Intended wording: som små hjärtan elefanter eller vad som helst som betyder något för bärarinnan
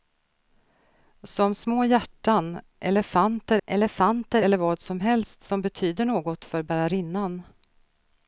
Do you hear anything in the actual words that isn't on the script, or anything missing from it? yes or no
yes